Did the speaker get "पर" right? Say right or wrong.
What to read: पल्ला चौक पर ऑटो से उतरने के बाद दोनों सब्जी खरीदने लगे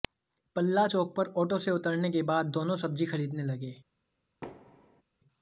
right